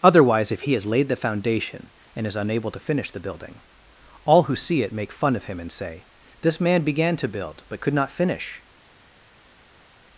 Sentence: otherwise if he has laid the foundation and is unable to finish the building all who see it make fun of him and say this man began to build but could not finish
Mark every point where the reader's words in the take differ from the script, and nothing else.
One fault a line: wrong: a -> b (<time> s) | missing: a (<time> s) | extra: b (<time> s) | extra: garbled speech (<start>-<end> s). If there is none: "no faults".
no faults